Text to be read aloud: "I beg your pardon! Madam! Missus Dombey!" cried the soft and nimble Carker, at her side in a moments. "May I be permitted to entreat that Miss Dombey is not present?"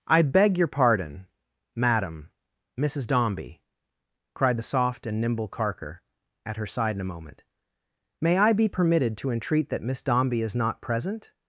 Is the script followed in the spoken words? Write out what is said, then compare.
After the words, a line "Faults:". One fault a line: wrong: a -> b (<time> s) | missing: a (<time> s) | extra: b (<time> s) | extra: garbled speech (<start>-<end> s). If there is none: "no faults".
"I beg your pardon! Madam! Missus Dombey!" cried the soft and nimble Carker, at her side in a moment. "May I be permitted to entreat that Miss Dombey is not present?"
Faults:
wrong: moments -> moment (7.1 s)